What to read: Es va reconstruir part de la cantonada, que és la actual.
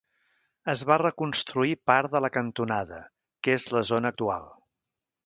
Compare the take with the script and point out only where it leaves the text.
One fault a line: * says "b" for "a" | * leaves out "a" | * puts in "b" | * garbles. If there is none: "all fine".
* puts in "zona"